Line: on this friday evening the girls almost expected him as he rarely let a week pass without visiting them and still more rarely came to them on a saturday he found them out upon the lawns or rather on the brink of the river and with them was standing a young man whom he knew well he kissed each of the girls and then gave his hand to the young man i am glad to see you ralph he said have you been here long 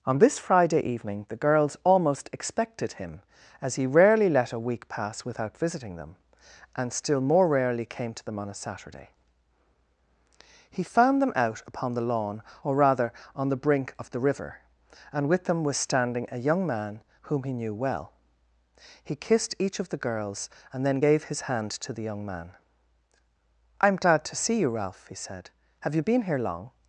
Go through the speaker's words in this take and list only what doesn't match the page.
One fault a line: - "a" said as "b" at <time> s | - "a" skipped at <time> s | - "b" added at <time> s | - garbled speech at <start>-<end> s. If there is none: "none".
- "lawns" said as "lawn" at 12.1 s